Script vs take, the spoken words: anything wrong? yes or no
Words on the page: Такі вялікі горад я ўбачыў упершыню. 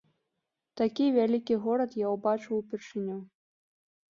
no